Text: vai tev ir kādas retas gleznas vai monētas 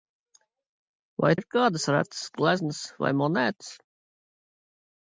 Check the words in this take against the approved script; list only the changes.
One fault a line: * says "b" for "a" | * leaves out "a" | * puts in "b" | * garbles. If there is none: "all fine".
* leaves out "tev"